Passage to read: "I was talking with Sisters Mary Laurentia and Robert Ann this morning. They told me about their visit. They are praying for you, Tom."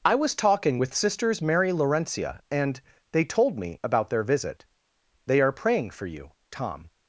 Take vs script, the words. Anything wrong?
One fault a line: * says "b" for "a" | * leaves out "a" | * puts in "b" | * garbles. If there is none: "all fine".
* leaves out "Robert Ann this morning"